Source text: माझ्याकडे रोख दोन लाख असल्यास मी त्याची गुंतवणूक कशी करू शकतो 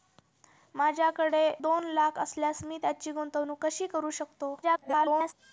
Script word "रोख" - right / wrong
wrong